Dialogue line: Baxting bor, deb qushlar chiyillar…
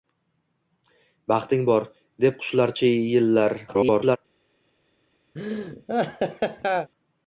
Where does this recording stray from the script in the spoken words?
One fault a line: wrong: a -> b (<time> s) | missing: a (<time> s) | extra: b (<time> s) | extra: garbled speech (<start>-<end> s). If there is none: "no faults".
extra: garbled speech (3.7-4.2 s)